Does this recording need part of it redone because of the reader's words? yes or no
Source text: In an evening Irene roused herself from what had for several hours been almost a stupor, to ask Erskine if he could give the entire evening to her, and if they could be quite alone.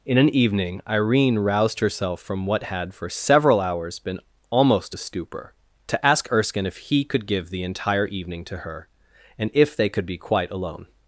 no